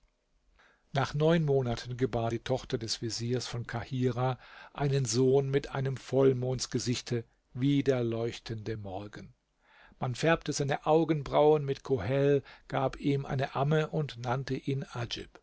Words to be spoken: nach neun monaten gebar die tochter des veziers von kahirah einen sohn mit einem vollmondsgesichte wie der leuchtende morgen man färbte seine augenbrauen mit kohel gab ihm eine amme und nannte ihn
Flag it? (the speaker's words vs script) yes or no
no